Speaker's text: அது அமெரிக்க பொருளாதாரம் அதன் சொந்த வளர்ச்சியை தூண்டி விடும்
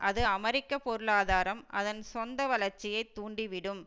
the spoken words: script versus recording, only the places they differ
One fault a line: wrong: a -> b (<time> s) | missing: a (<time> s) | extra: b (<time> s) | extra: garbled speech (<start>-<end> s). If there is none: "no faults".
no faults